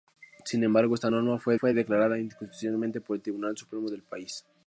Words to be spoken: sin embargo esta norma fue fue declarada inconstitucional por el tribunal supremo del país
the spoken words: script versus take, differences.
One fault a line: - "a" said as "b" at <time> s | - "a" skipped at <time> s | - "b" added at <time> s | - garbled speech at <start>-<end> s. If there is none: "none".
none